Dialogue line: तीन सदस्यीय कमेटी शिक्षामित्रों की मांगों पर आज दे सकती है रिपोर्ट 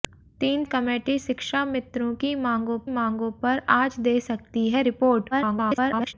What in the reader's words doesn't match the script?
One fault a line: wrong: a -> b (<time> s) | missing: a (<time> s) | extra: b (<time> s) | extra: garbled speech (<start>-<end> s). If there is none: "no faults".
missing: सदस्यीय (0.6 s)
extra: मांगों (2.9 s)
extra: garbled speech (5.3-6.1 s)